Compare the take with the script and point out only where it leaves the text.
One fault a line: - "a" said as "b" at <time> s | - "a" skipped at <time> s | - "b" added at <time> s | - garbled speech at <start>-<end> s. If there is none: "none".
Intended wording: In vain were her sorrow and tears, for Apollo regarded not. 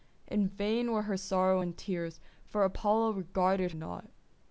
none